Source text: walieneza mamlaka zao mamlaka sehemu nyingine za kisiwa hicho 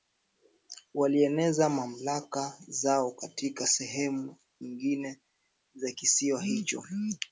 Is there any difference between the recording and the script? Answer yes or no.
yes